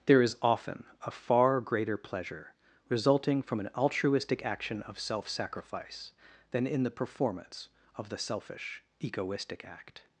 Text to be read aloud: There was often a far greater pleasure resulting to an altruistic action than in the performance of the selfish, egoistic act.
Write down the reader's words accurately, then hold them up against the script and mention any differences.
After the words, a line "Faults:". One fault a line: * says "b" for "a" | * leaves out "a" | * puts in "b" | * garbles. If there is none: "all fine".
There is often a far greater pleasure resulting from an altruistic action of self sacrifice than in the performance of the selfish, egoistic act.
Faults:
* says "is" for "was"
* says "from" for "to"
* puts in "of self sacrifice"